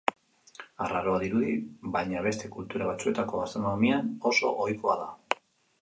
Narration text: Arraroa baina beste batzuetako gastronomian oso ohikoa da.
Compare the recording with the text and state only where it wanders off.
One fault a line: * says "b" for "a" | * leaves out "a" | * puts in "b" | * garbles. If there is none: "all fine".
* puts in "dirudi"
* puts in "kultura"